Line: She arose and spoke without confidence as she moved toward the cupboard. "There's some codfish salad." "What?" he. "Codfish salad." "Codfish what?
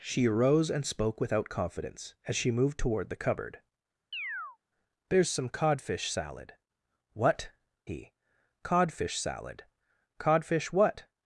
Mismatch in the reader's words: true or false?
false